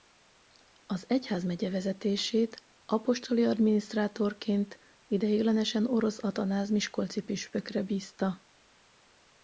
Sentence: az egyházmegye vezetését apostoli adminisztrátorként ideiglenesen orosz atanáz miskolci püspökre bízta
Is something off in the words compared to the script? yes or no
no